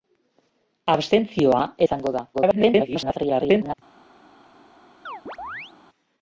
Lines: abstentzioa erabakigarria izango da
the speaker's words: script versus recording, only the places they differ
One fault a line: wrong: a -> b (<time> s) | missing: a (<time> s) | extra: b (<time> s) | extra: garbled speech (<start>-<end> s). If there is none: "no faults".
missing: erabakigarria (1.6 s)
extra: garbled speech (2.3-3.7 s)